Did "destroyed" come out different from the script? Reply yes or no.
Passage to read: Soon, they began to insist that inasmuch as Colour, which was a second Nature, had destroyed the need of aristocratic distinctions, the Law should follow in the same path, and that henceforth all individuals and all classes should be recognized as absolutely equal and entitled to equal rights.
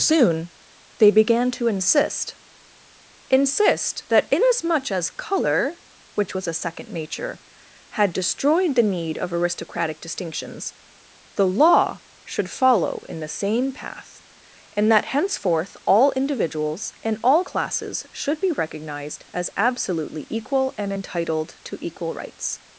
no